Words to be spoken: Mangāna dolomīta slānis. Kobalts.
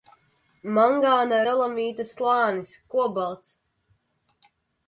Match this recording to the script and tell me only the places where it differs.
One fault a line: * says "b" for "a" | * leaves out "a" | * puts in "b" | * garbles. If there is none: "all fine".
all fine